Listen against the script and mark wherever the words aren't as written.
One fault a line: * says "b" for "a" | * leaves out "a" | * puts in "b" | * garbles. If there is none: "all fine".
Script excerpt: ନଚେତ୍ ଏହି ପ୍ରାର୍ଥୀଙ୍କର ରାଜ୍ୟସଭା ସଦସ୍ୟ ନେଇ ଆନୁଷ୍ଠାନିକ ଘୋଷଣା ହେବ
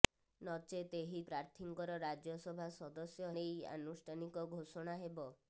all fine